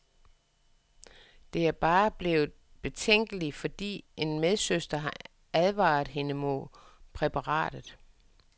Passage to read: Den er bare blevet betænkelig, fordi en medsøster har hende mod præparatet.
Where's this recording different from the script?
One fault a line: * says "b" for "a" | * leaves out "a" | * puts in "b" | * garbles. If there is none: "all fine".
* says "Det" for "Den"
* puts in "advaret"